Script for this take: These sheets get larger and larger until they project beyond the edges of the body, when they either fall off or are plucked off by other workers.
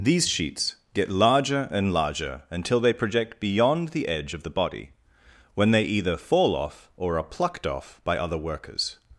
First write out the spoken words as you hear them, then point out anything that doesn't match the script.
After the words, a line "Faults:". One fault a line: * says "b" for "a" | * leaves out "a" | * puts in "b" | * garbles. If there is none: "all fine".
These sheets get larger and larger until they project beyond the edge of the body, when they either fall off or are plucked off by other workers.
Faults:
* says "edge" for "edges"